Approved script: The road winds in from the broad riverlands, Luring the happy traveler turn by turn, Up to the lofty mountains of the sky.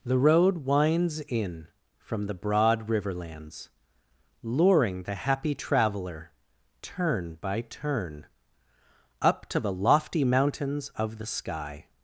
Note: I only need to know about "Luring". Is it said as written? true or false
true